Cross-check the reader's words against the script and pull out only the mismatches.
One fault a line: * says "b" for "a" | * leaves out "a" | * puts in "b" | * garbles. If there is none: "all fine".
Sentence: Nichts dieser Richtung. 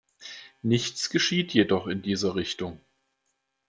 * puts in "geschieht jedoch in"